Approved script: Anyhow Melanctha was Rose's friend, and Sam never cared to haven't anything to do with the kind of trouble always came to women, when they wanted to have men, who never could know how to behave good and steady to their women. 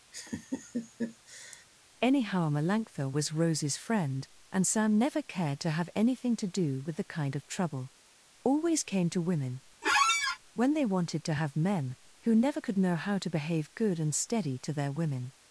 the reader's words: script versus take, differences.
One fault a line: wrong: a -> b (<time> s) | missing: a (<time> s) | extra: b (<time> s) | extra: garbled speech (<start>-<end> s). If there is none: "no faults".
wrong: haven't -> have (5.7 s)